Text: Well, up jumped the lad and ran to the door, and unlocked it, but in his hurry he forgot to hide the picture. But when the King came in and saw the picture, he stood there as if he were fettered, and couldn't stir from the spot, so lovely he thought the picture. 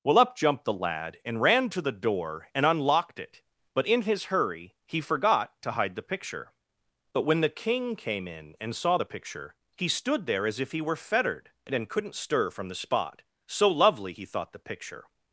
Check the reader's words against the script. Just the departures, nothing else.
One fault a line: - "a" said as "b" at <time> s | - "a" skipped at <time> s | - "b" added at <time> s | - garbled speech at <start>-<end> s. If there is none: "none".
none